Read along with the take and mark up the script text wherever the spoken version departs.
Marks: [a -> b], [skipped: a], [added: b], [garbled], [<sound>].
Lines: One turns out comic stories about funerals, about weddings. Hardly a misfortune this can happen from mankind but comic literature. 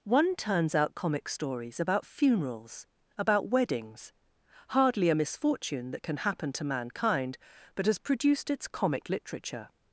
One turns out comic stories about funerals, about weddings. Hardly a misfortune [this -> that] can happen [from -> to] mankind but [added: has produced its] comic literature.